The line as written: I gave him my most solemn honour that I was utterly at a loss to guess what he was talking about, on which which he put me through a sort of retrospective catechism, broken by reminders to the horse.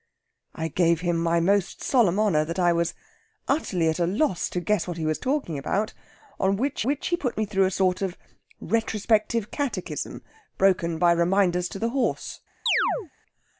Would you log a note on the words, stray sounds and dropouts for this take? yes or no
yes